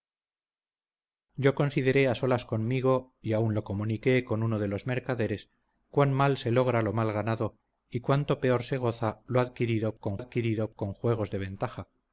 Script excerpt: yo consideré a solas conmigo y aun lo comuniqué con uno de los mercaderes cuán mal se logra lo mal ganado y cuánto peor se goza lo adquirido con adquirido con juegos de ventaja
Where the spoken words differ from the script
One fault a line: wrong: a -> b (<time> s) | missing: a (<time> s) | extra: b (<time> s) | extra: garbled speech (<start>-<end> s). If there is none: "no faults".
no faults